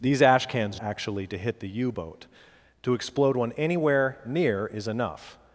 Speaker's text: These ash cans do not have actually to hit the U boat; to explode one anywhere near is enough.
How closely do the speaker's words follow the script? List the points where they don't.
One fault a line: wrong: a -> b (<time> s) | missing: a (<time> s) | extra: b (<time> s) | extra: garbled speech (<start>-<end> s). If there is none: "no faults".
missing: do not have (0.8 s)